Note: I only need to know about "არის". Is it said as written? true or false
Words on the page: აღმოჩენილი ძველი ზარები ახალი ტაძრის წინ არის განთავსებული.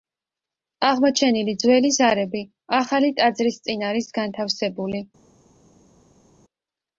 true